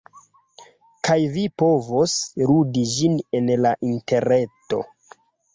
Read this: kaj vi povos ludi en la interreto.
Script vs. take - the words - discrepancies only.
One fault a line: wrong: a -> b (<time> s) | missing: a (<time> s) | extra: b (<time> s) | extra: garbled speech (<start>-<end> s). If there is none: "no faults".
extra: ĝin (3.0 s)